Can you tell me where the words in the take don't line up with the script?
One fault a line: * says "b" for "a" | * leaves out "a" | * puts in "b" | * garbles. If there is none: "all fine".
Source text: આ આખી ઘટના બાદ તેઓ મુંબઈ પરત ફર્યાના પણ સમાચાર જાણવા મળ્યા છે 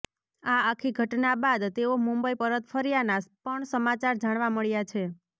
all fine